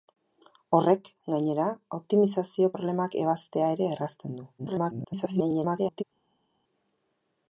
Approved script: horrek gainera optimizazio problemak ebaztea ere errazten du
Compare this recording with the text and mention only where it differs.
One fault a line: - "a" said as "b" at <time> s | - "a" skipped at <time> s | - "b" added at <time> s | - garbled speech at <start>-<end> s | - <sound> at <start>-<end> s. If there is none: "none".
- garbled speech at 4.6-6.0 s